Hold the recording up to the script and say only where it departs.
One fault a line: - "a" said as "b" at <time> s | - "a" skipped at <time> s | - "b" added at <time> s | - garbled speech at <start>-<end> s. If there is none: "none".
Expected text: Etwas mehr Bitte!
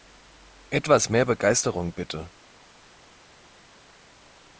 - "Begeisterung" added at 1.2 s